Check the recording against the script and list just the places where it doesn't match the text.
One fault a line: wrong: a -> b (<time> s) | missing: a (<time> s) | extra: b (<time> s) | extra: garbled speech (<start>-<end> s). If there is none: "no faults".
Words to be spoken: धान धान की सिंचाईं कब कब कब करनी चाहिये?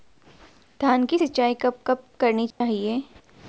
missing: धान (1.1 s)
missing: कब (2.0 s)